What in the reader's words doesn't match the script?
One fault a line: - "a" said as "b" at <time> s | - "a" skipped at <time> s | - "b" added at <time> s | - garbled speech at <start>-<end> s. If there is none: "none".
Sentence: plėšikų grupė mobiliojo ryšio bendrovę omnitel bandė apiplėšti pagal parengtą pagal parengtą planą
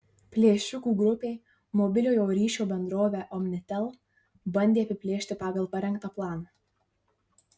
- "pagal parengtą" skipped at 6.1 s